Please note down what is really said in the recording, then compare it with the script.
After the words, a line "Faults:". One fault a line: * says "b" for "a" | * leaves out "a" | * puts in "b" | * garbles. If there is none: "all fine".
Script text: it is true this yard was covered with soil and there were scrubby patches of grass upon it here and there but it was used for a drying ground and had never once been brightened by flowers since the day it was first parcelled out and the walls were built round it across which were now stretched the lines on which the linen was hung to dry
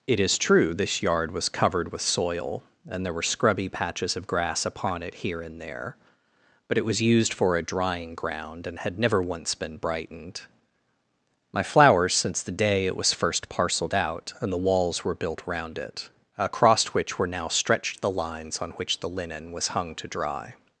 it is true this yard was covered with soil and there were scrubby patches of grass upon it here and there but it was used for a drying ground and had never once been brightened my flowers since the day it was first parcelled out and the walls were built round it across which were now stretched the lines on which the linen was hung to dry
Faults:
* says "my" for "by"